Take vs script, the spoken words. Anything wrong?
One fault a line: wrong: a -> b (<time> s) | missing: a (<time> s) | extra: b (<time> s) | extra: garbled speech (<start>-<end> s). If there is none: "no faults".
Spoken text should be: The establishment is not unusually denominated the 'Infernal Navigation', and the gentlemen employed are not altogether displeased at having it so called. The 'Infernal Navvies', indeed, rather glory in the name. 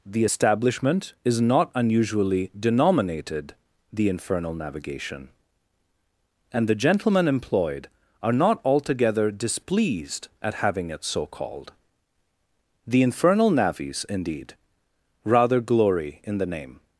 no faults